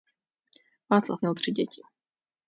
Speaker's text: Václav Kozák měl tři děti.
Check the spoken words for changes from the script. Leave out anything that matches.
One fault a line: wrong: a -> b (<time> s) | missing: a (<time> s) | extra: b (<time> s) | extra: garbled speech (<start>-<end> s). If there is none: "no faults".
missing: Kozák (1.2 s)